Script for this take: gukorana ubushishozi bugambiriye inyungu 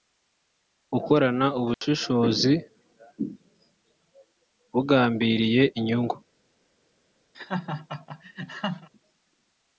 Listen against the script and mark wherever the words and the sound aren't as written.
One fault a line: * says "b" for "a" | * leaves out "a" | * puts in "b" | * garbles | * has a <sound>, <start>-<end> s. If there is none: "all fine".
* has a dropout, 1.7-1.8 s
* has a laugh, 7.3-8.9 s